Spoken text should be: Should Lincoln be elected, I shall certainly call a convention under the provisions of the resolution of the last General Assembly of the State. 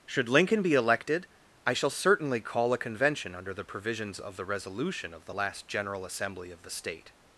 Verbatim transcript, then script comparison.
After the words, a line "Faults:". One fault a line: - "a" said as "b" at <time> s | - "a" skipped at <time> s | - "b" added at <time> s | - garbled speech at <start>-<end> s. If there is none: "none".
Should Lincoln be elected, I shall certainly call a convention under the provisions of the resolution of the last General Assembly of the State.
Faults:
none